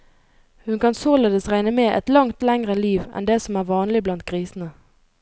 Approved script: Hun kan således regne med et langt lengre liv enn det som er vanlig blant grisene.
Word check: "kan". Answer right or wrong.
right